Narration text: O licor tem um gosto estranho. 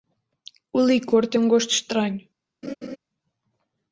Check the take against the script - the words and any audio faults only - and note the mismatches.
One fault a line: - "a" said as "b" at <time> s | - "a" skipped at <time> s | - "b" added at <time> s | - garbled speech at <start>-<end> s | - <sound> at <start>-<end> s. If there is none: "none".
- laugh at 2.6-3.0 s